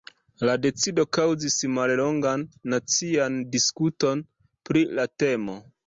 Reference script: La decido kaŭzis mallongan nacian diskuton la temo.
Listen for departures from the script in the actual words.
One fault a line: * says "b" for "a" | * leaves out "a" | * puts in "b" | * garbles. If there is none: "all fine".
* puts in "pri"